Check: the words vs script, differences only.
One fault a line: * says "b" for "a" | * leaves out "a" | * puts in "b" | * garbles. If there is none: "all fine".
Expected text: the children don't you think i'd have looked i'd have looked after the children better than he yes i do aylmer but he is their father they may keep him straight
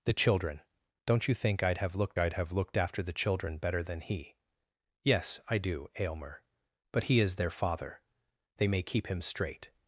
all fine